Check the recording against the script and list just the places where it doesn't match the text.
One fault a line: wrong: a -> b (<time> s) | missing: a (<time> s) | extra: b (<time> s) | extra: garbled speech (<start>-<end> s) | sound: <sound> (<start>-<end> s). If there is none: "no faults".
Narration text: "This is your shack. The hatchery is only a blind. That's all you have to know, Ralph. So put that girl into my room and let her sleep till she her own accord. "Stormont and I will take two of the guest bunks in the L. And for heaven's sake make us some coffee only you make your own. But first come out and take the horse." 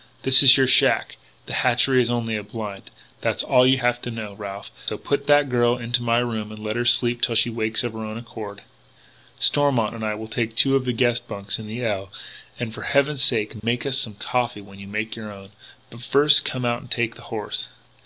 extra: wakes of (7.5 s)
sound: dropout (13.6-13.6 s)
wrong: only -> when (14.6 s)